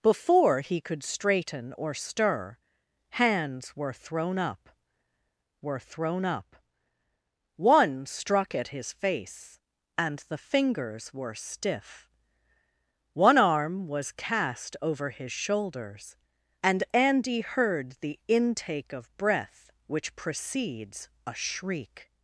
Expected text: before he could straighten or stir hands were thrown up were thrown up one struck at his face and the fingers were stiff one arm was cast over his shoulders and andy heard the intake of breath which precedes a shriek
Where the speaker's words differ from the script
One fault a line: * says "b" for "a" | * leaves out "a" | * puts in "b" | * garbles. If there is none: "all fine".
all fine